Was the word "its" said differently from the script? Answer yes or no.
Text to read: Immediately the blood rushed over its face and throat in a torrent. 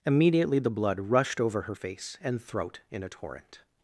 yes